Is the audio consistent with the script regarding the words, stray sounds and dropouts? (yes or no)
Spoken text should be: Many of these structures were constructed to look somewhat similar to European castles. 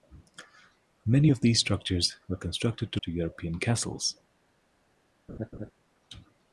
no